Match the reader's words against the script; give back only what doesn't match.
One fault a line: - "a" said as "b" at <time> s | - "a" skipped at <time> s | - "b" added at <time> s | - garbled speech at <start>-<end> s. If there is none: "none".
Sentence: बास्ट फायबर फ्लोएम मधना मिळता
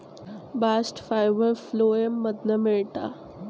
none